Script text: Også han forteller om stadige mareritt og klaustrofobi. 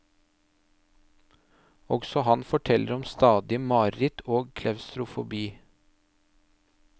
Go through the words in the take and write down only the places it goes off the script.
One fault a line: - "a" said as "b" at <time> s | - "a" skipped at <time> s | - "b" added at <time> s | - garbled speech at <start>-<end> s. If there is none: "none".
none